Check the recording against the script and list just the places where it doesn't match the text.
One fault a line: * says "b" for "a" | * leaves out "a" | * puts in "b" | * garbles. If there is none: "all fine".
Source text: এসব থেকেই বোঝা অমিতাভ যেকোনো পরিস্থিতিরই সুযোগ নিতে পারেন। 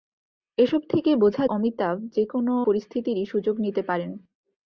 all fine